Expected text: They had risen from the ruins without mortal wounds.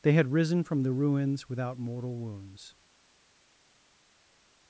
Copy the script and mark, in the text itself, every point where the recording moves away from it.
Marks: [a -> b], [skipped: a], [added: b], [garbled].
They had risen from the ruins without mortal wounds.